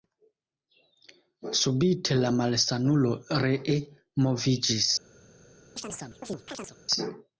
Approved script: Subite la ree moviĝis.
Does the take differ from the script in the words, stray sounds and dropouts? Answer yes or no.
yes